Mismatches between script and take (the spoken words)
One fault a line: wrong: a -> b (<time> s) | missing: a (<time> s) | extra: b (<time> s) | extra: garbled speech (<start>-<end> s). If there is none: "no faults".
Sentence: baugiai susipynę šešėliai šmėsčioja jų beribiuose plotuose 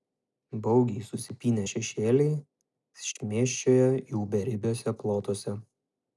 no faults